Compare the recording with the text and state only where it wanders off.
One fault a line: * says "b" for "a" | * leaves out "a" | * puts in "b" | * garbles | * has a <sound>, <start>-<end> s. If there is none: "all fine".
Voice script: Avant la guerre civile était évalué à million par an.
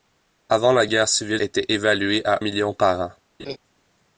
* has a laugh, 3.4-3.6 s